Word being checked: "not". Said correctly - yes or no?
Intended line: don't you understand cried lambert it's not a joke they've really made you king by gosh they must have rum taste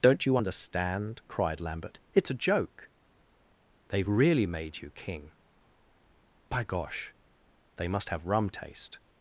no